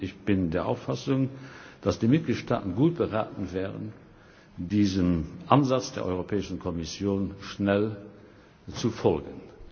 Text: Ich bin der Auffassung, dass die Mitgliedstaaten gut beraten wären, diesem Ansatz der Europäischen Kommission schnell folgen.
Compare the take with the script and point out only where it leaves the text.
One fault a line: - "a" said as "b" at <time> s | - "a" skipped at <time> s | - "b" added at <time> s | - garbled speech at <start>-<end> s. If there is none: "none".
- "zu" added at 8.8 s